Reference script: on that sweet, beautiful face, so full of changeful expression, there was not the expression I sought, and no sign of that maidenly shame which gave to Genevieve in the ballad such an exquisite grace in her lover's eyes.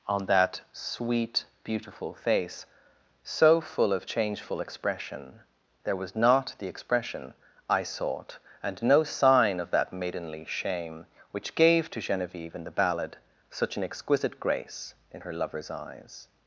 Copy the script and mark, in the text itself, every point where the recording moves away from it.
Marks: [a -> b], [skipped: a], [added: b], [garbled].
on that sweet, beautiful face, so full of changeful expression, there was not the expression I sought, and no sign of that maidenly shame which gave to Genevieve in the ballad such an exquisite grace in her lover's eyes.